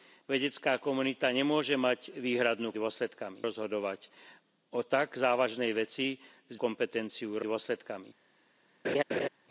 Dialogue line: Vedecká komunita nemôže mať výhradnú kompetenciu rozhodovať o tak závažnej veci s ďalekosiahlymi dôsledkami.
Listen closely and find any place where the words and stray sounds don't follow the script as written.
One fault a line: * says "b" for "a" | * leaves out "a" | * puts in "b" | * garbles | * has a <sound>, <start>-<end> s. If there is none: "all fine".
* says "dôsledkami" for "kompetenciu"
* says "kompetenciu" for "ďalekosiahlymi"
* has a laugh, 8.8-9.3 s